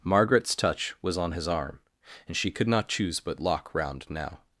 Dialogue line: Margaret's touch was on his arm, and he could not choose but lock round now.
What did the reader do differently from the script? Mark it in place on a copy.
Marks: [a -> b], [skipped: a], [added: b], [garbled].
Margaret's touch was on his arm, and [he -> she] could not choose but lock round now.